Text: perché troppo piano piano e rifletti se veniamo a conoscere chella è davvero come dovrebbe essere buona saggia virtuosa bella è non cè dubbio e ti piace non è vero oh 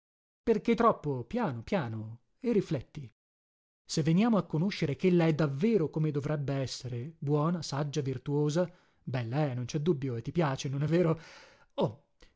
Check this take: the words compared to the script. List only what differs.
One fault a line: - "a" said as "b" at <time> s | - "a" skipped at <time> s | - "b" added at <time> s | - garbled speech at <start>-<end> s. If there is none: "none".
none